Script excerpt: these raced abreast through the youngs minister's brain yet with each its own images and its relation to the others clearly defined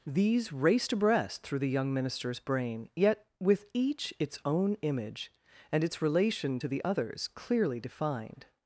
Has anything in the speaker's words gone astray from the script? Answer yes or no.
yes